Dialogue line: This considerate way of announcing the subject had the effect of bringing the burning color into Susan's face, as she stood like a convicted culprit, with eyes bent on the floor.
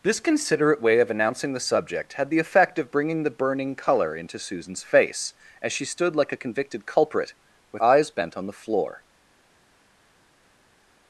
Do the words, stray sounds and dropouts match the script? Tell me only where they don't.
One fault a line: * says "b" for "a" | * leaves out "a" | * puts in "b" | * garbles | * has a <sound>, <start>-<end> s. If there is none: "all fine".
all fine